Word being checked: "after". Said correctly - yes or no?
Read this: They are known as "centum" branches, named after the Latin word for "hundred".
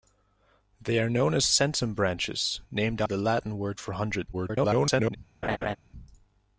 no